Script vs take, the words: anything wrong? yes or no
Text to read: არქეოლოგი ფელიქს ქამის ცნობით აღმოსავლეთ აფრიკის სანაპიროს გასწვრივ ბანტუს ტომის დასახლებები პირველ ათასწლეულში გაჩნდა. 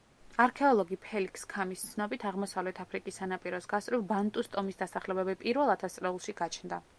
no